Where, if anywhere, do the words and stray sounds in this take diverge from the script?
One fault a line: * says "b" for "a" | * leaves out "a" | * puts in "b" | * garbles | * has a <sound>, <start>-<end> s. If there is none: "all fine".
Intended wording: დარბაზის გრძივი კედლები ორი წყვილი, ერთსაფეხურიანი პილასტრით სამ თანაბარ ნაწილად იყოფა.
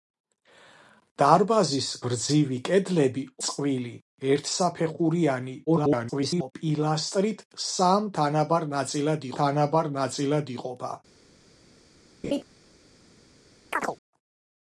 * leaves out "ორი"
* garbles
* puts in "თანაბარ ნაწილად"
* has a laugh, 12.2-12.4 s
* has a chirp, 13.7-14.0 s